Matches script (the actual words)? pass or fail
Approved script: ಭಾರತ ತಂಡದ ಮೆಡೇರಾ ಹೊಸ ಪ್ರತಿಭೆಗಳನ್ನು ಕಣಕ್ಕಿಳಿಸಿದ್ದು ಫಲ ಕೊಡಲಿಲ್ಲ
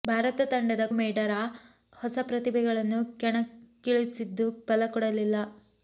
pass